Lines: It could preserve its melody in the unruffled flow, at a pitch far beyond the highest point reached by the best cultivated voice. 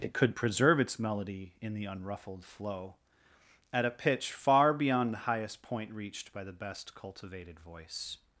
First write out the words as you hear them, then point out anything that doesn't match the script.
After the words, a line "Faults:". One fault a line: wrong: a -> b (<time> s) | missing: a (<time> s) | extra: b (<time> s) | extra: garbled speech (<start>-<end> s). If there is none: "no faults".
It could preserve its melody in the unruffled flow, at a pitch far beyond the highest point reached by the best cultivated voice.
Faults:
no faults